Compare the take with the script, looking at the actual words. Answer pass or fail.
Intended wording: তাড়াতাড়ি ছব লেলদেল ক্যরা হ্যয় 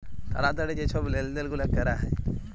fail